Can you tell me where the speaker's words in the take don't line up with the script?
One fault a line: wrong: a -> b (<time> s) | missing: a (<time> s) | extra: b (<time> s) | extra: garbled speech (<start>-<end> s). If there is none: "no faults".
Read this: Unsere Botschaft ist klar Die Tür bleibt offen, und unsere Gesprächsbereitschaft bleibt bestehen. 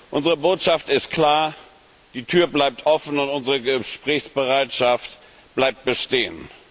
no faults